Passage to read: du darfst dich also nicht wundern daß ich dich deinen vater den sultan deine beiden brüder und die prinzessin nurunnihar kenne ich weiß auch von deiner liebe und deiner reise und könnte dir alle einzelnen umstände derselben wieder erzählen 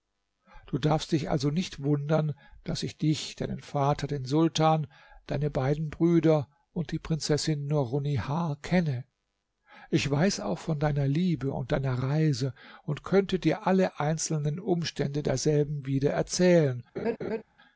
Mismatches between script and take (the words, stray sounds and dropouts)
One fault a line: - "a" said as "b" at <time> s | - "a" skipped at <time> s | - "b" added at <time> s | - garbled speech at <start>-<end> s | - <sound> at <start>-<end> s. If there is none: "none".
- laugh at 17.0-17.4 s